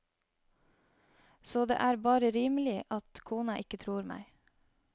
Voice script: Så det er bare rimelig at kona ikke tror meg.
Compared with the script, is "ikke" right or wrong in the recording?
right